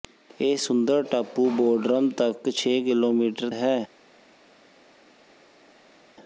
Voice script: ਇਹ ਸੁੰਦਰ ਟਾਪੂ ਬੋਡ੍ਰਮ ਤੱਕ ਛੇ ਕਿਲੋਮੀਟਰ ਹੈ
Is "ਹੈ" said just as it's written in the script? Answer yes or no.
yes